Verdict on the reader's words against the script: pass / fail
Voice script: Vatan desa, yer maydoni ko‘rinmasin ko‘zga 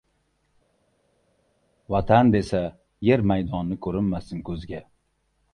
pass